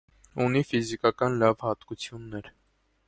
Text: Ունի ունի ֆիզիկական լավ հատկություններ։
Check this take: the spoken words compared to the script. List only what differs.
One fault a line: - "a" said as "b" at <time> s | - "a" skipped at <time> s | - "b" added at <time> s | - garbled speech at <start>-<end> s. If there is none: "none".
- "ունի" skipped at 0.6 s